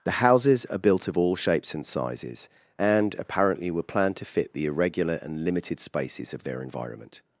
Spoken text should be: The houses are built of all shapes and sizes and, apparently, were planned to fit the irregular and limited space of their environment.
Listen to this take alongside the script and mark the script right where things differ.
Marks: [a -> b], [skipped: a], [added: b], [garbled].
The houses are built of all shapes and sizes and, apparently, were planned to fit the irregular and limited [space -> spaces] of their environment.